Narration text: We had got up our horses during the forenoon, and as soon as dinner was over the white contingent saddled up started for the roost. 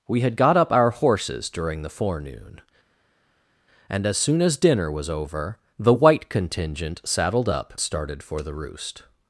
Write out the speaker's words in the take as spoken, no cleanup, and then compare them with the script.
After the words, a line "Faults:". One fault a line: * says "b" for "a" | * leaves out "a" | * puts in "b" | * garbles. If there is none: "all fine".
We had got up our horses during the forenoon, and as soon as dinner was over the white contingent saddled up started for the roost.
Faults:
all fine